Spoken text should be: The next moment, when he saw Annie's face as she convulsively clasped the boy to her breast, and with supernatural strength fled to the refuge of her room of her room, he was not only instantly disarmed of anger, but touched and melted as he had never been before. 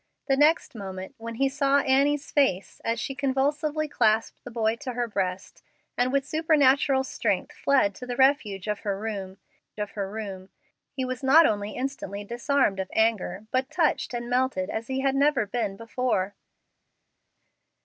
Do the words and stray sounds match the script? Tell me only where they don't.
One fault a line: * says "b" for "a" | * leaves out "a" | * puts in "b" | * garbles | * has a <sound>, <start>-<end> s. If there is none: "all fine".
all fine